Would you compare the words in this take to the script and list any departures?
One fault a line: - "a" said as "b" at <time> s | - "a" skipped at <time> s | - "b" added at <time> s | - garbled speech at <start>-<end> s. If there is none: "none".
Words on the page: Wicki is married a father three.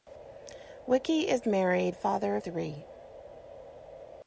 none